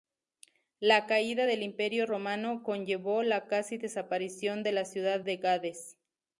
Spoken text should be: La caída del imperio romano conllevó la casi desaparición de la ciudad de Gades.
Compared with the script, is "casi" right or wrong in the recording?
right